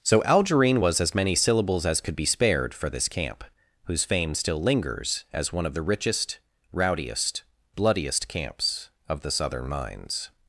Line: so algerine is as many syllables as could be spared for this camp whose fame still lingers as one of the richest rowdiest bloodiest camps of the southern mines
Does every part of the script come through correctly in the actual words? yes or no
no